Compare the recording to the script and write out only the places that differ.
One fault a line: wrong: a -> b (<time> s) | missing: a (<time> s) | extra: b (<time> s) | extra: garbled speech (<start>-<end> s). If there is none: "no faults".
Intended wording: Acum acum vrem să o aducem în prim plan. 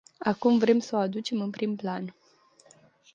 missing: acum (0.6 s)